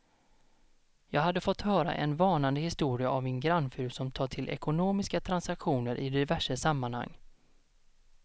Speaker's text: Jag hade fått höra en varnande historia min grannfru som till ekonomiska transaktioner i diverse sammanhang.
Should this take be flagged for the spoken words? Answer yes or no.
yes